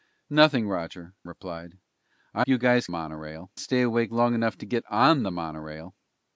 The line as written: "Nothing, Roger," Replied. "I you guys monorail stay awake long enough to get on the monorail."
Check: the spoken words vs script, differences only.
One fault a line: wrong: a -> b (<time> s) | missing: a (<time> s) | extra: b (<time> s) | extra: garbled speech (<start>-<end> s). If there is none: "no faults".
no faults